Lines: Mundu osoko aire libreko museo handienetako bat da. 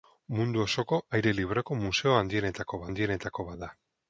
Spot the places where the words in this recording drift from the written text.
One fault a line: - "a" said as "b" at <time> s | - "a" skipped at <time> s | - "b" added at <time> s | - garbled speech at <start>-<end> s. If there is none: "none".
- "handienetako" added at 2.9 s